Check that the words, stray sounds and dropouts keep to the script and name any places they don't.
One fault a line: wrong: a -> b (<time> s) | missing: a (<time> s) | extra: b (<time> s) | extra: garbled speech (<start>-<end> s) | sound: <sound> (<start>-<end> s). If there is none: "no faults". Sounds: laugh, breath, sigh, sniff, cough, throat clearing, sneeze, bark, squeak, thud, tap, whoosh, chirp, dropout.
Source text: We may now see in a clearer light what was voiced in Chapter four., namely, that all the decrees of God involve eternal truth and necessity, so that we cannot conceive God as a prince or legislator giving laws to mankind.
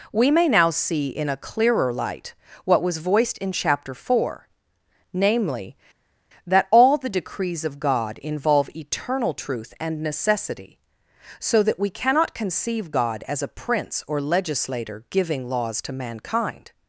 no faults